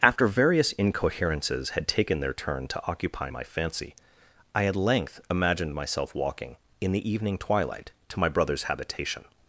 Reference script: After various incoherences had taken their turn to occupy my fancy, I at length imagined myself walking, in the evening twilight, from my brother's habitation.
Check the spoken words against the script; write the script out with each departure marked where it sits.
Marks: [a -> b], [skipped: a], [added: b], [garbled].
After various incoherences had taken their turn to occupy my fancy, I at length imagined myself walking, in the evening twilight, [from -> to] my brother's habitation.